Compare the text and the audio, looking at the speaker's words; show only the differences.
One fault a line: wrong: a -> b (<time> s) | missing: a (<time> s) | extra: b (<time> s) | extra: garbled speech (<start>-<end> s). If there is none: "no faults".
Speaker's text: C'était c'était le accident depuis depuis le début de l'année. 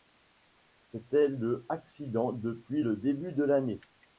missing: c'était (1.3 s)
missing: depuis (2.8 s)